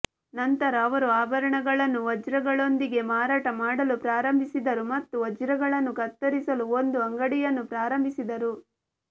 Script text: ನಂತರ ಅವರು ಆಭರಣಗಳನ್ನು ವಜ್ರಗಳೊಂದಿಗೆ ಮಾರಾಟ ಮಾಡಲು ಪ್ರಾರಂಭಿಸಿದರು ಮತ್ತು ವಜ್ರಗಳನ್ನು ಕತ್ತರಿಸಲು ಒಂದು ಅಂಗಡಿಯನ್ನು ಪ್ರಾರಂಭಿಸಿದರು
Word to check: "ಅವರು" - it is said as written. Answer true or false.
true